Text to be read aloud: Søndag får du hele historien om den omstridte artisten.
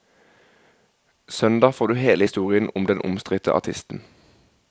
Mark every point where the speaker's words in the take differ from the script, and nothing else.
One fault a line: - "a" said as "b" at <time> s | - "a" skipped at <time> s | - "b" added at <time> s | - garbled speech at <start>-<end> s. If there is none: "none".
none